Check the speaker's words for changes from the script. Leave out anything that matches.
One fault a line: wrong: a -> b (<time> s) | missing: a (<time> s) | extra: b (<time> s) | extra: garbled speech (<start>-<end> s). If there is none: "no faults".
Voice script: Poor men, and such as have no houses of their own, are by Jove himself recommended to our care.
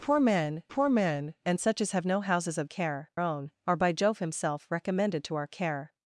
extra: poor men (0.7 s)
wrong: their -> care (2.6 s)